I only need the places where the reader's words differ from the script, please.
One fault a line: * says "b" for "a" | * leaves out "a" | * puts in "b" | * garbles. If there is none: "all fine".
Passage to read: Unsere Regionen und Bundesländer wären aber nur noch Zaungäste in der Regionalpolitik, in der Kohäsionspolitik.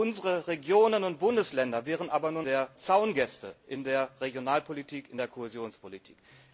* says "der" for "noch"